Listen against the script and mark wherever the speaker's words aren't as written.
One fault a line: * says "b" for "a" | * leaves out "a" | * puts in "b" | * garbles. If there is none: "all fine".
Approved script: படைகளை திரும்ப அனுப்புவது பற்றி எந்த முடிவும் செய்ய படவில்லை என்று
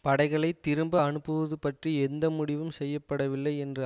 all fine